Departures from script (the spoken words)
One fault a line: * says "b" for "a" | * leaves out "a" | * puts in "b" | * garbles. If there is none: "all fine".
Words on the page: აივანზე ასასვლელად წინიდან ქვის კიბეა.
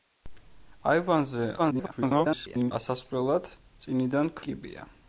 * garbles
* leaves out "ქვის"